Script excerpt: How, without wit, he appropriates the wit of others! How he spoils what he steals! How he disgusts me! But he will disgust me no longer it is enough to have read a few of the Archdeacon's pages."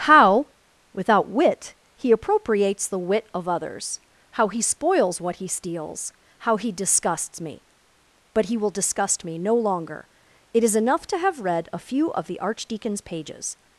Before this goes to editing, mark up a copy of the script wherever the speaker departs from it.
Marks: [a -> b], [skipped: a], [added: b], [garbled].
How, without wit, he appropriates the wit of others! How he spoils what he steals! How he disgusts me! But he will disgust me no longer it is enough to have read a few of the Archdeacon's pages."